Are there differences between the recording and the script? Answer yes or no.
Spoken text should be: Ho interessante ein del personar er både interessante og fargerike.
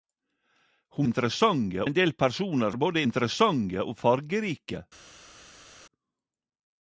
no